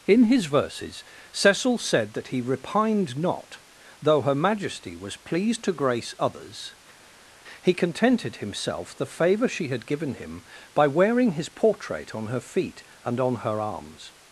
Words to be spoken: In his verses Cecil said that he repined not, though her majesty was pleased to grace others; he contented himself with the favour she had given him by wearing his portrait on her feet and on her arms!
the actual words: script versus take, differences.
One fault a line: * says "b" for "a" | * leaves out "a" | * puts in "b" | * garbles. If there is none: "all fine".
* leaves out "with"